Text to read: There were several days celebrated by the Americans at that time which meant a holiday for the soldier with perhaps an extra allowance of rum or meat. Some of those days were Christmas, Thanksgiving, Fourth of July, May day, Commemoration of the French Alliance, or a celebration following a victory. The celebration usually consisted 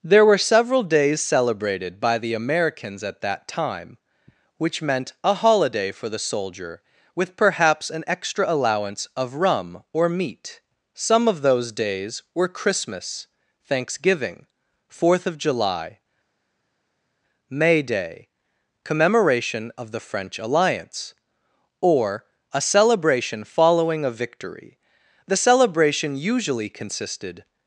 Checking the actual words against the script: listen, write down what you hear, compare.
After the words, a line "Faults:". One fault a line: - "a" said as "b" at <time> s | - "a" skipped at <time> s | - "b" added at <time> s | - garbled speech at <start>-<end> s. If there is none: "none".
There were several days celebrated by the Americans at that time which meant a holiday for the soldier with perhaps an extra allowance of rum or meat. Some of those days were Christmas, Thanksgiving, Fourth of July, May day, Commemoration of the French Alliance, or a celebration following a victory. The celebration usually consisted
Faults:
none